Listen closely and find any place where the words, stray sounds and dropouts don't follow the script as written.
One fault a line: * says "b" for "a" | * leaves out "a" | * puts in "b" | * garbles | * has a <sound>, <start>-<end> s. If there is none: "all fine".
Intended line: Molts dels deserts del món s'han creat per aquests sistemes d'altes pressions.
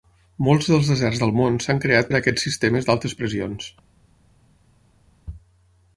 all fine